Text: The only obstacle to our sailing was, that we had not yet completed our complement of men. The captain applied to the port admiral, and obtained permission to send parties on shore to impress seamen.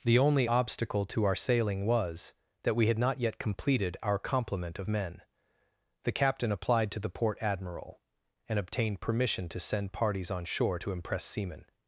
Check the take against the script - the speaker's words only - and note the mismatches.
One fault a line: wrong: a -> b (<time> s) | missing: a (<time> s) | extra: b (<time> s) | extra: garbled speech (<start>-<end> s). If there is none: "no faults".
no faults